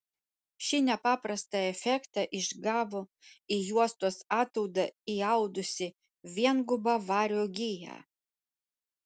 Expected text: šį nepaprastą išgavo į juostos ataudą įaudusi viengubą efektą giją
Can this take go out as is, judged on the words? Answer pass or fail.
fail